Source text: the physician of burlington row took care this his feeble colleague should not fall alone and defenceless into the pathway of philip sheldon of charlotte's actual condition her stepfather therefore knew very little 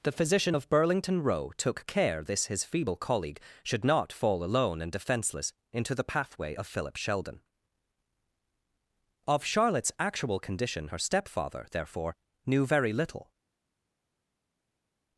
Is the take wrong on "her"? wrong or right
right